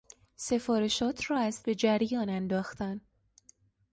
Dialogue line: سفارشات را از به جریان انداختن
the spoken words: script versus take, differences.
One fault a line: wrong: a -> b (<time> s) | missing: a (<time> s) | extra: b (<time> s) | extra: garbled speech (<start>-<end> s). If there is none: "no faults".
no faults